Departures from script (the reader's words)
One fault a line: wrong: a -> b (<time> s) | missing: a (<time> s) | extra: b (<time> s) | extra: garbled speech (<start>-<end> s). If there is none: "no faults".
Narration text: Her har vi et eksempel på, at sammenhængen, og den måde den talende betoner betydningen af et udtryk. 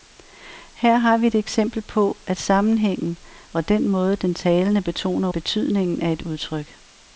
no faults